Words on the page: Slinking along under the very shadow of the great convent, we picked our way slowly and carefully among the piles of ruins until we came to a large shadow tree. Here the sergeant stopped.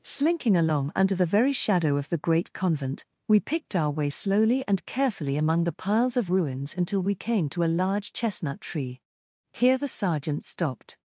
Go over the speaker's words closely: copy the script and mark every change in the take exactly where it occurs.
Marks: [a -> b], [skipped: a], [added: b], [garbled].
Slinking along under the very shadow of the great convent, we picked our way slowly and carefully among the piles of ruins until we came to a large [shadow -> chestnut] tree. Here the sergeant stopped.